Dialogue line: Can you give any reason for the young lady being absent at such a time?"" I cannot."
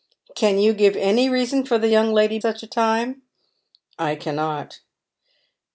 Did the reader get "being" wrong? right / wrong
wrong